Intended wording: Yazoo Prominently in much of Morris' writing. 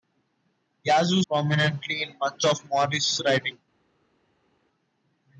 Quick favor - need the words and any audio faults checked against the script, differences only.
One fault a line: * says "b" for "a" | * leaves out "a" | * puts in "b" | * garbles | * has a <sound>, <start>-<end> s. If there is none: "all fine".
all fine